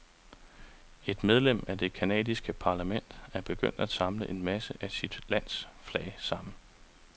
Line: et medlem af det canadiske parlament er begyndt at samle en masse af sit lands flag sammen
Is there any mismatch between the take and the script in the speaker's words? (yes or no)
no